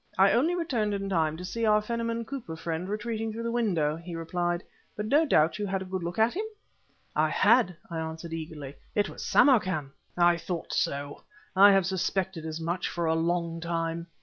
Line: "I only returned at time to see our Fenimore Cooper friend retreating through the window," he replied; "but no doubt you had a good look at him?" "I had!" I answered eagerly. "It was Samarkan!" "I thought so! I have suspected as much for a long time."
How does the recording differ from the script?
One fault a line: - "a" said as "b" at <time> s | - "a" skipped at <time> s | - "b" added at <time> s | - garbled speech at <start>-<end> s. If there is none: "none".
- "at" said as "in" at 0.9 s